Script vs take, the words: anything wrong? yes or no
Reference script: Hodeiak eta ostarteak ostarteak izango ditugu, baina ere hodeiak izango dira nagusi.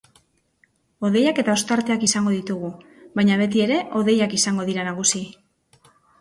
yes